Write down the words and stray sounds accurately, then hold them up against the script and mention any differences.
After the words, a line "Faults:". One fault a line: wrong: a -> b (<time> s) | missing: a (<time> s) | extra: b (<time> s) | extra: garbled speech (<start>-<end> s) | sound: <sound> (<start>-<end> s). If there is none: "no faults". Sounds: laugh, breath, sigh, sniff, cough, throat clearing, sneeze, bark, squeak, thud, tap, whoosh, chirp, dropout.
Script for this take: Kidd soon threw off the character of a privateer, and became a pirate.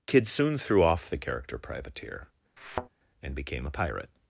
Kidd soon threw off the character privateer, and became a pirate.
Faults:
missing: of a (1.6 s)
sound: thud (2.6-2.9 s)